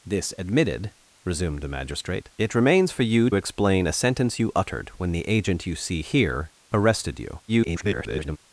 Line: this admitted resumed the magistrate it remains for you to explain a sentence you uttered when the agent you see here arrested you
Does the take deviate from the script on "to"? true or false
true